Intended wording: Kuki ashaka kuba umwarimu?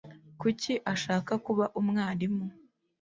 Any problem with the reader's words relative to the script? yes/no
no